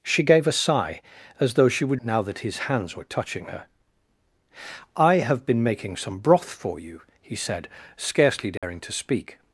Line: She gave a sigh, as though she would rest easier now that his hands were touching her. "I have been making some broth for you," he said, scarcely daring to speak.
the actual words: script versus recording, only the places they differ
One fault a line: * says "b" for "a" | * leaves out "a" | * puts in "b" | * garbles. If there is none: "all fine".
* leaves out "rest easier"